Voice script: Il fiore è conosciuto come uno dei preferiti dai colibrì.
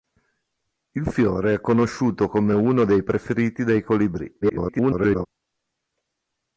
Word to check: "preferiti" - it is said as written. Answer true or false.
true